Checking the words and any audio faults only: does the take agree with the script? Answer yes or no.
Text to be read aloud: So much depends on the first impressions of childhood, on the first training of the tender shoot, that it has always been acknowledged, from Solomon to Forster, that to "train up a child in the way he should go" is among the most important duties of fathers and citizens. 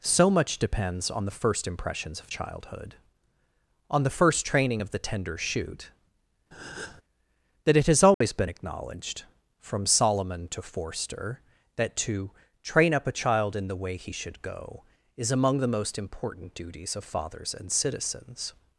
no